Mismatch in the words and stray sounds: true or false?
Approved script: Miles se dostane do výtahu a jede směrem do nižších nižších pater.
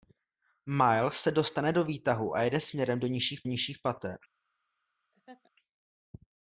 true